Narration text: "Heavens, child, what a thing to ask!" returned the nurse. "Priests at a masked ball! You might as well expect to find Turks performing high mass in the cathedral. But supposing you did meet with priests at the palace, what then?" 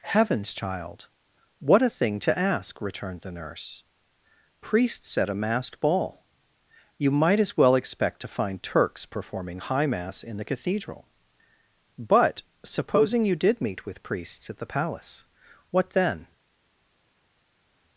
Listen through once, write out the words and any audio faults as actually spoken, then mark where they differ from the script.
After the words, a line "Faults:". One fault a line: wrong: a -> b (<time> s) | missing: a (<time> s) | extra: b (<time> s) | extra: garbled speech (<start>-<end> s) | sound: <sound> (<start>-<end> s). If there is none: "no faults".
"Heavens, child, what a thing to ask!" returned the nurse. "Priests at a masked ball! You might as well expect to find Turks performing high mass in the cathedral. But supposing you did meet with priests at the palace, what then?"
Faults:
no faults